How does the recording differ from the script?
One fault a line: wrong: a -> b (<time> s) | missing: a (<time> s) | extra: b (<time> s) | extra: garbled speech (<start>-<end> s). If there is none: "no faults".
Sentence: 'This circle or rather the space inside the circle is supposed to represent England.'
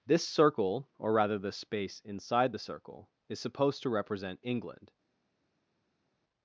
no faults